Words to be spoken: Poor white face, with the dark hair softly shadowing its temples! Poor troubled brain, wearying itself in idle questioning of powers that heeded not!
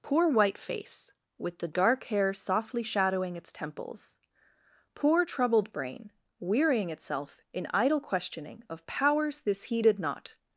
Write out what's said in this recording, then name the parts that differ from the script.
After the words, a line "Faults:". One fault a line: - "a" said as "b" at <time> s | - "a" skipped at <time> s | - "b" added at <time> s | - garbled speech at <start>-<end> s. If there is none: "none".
Poor white face, with the dark hair softly shadowing its temples! Poor troubled brain, wearying itself in idle questioning of powers this heeded not!
Faults:
- "that" said as "this" at 9.4 s